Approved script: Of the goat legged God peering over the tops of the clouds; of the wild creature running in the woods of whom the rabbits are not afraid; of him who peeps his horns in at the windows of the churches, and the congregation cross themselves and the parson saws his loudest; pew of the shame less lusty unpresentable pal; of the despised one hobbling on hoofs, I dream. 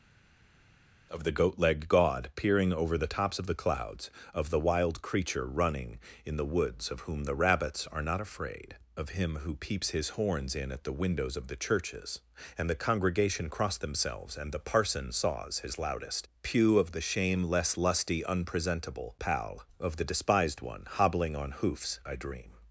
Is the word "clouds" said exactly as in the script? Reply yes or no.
yes